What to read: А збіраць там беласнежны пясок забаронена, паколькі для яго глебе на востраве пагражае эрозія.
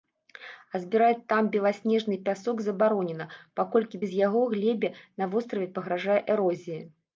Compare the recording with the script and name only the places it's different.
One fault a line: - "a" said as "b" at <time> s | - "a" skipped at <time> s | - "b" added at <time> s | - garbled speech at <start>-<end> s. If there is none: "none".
- "для" said as "без" at 4.0 s